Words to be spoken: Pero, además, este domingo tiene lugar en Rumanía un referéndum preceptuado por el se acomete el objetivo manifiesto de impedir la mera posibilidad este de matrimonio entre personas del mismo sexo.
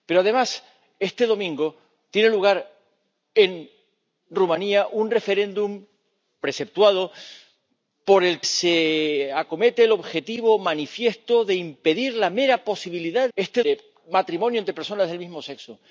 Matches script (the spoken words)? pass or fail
pass